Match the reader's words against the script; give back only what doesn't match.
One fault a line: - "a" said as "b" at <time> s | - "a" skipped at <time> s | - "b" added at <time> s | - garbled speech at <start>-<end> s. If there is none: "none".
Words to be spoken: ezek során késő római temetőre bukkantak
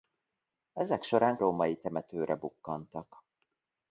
- "késő" skipped at 1.4 s